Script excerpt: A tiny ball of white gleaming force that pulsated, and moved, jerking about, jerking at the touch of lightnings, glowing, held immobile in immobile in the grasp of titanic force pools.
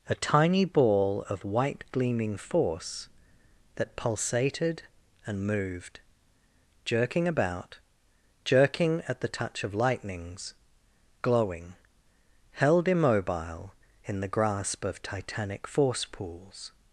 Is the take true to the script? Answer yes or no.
no